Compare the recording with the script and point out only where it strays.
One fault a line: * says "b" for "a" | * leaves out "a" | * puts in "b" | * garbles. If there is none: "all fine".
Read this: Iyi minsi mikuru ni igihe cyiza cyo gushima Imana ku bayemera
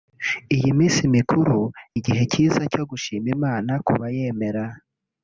* leaves out "ni"